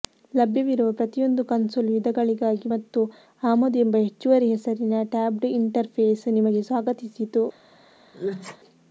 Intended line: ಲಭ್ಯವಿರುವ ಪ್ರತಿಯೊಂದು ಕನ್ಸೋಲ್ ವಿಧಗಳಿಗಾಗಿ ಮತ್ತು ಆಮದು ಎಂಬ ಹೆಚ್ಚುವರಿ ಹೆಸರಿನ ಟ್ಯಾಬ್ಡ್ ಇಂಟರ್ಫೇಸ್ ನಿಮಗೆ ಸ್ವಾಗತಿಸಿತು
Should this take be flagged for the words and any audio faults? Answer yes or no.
yes